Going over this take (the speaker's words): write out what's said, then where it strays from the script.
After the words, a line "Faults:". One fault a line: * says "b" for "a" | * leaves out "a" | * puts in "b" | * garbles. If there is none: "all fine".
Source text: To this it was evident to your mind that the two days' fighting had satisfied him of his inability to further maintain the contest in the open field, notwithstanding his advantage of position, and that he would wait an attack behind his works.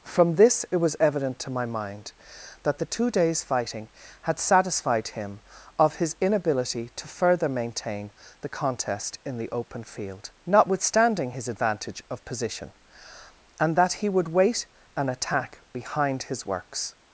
From this it was evident to my mind that the two days' fighting had satisfied him of his inability to further maintain the contest in the open field, notwithstanding his advantage of position, and that he would wait an attack behind his works.
Faults:
* says "From" for "To"
* says "my" for "your"